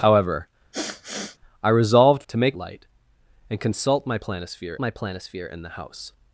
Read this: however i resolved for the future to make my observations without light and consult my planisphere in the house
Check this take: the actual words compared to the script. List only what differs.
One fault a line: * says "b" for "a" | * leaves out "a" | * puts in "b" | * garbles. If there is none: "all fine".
* leaves out "for the future"
* leaves out "my observations without"
* puts in "my planisphere"